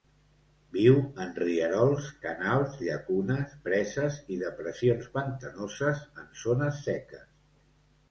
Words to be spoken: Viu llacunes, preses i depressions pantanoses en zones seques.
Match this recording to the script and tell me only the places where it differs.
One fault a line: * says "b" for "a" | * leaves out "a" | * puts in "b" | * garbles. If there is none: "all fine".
* puts in "en rierols canals"